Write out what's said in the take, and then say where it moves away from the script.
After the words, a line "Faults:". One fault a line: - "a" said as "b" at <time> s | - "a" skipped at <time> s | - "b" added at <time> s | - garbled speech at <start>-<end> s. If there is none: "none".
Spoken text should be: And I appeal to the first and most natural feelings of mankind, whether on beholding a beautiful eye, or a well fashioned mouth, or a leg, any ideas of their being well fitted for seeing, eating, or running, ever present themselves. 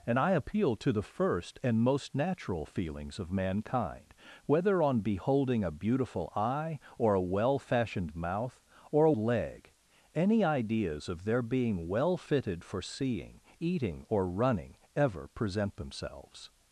And I appeal to the first and most natural feelings of mankind, whether on beholding a beautiful eye, or a well fashioned mouth, or a leg, any ideas of their being well fitted for seeing, eating, or running, ever present themselves.
Faults:
none